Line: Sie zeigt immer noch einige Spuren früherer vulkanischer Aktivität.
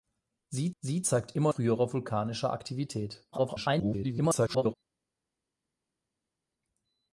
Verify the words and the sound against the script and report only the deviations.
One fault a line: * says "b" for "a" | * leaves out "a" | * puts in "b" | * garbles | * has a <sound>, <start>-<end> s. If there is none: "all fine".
* puts in "sie"
* leaves out "noch einige Spuren"
* garbles